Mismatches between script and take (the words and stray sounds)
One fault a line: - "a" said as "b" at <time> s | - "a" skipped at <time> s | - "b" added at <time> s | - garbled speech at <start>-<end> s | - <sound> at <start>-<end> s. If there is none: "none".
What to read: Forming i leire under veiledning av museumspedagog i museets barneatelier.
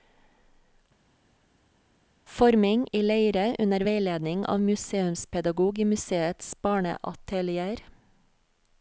none